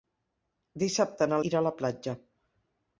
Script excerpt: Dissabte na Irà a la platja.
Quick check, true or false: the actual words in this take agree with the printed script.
true